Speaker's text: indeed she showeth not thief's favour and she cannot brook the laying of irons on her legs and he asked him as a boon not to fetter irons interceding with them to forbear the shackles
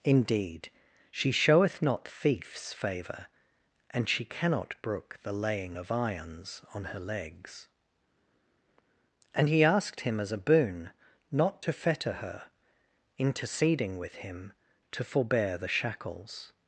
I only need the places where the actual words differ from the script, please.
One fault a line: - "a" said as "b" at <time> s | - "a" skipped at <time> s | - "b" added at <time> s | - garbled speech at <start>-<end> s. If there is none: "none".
- "irons" said as "her" at 12.1 s
- "them" said as "him" at 14.2 s